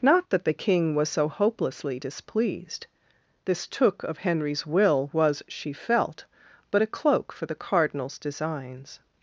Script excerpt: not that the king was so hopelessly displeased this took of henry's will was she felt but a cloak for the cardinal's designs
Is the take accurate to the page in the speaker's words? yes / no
yes